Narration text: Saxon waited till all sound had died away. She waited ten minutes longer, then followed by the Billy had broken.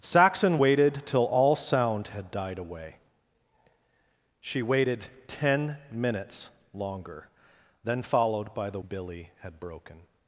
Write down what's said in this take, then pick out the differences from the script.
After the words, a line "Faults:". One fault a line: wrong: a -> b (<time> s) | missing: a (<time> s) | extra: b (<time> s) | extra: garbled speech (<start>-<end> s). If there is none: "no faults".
Saxon waited till all sound had died away. She waited ten minutes longer, then followed by the Billy had broken.
Faults:
no faults